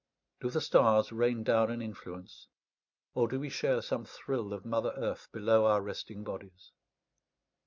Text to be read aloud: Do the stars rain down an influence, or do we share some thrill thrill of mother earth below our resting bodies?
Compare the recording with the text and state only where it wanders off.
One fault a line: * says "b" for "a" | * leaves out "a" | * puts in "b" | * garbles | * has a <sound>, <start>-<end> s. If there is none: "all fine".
* leaves out "thrill"